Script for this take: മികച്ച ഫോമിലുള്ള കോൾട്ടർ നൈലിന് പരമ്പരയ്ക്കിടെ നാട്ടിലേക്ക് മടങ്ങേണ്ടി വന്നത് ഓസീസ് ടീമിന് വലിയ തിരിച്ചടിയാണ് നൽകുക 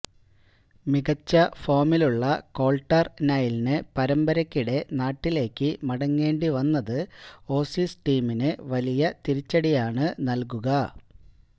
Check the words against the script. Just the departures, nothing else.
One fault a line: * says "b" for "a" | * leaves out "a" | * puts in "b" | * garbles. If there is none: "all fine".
all fine